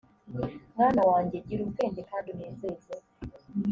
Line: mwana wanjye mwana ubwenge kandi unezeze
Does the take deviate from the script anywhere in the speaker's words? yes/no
yes